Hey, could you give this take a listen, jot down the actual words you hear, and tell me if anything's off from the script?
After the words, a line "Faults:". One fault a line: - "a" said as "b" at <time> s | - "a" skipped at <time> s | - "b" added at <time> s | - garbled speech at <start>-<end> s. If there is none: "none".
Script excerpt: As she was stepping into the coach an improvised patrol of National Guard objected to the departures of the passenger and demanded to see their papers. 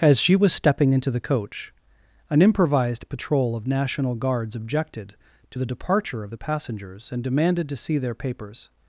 As she was stepping into the coach an improvised patrol of National Guards objected to the departure of the passengers and demanded to see their papers.
Faults:
- "Guard" said as "Guards" at 4.2 s
- "departures" said as "departure" at 5.7 s
- "passenger" said as "passengers" at 6.3 s